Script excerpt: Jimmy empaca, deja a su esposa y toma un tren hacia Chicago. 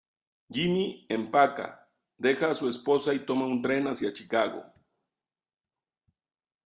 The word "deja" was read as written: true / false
true